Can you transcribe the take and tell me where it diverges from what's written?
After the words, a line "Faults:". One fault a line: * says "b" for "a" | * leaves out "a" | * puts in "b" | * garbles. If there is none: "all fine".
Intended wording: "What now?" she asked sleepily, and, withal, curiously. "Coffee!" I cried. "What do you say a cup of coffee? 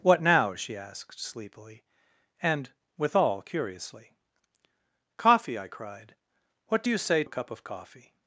"What now?" she asked sleepily, and, withal, curiously. "Coffee!" I cried. "What do you say a cup of coffee?
Faults:
all fine